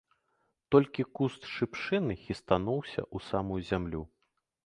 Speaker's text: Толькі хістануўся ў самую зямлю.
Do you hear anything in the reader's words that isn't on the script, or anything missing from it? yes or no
yes